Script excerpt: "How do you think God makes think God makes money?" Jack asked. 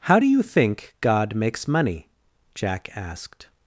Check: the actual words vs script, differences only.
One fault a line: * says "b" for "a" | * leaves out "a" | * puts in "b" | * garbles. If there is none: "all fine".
* leaves out "think God makes"